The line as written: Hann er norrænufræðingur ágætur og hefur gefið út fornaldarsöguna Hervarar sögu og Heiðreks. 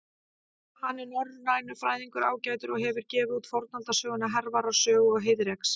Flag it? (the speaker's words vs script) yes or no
no